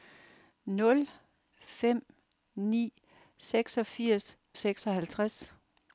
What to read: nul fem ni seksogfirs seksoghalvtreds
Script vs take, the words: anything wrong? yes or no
no